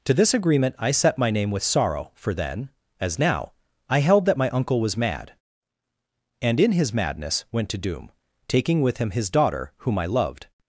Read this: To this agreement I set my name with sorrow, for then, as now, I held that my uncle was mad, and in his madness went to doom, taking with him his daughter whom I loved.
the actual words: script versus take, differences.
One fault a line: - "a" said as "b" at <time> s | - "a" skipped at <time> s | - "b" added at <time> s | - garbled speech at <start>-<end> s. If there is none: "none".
none